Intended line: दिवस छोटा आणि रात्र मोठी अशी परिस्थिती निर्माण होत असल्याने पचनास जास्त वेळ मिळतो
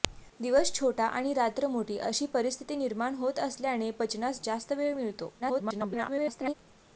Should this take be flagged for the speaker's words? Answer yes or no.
yes